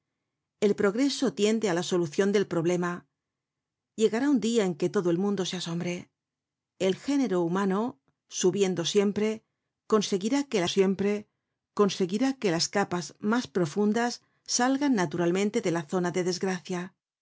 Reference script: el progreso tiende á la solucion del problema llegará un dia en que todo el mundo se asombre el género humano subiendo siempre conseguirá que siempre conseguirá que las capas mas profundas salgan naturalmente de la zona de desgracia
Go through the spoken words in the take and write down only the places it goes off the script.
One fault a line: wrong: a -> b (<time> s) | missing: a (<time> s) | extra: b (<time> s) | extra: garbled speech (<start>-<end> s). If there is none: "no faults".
no faults